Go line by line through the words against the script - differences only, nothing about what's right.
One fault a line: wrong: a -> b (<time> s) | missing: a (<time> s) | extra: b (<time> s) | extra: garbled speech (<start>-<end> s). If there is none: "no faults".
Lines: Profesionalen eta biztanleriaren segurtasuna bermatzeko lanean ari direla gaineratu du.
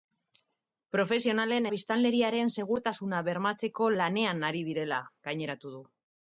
missing: eta (1.7 s)